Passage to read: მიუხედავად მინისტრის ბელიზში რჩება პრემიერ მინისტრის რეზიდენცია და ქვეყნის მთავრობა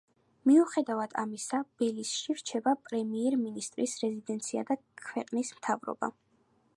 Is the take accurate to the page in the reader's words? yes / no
no